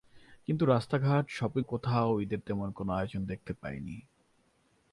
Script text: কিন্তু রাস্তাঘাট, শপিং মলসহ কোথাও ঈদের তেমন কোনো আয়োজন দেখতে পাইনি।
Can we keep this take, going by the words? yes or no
no